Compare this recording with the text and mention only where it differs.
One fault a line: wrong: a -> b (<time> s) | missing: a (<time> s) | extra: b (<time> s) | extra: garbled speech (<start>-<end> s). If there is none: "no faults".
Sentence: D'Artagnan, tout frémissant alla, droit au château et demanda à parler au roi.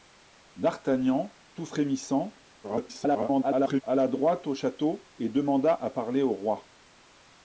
extra: garbled speech (2.6-3.8 s)